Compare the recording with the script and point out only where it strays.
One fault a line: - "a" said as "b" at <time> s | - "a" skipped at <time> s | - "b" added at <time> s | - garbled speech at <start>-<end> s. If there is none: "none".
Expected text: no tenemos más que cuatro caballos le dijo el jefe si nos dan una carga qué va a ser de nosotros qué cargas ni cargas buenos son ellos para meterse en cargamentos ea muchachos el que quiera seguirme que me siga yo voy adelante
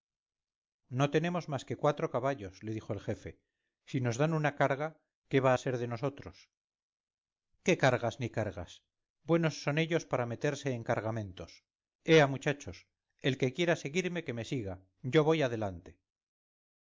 none